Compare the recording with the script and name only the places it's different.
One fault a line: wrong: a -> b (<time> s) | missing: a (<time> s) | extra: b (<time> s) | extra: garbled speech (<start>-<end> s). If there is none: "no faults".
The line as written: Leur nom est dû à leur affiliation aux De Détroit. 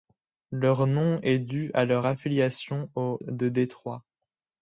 no faults